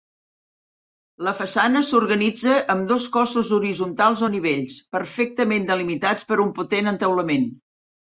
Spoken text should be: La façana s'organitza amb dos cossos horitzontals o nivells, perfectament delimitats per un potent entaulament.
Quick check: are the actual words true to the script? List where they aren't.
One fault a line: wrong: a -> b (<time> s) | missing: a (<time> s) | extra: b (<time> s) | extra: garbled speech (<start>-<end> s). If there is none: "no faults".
no faults